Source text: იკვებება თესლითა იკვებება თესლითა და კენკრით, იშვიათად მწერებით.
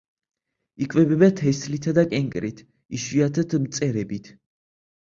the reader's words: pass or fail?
fail